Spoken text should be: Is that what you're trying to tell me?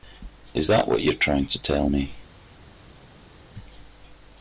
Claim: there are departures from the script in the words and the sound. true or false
false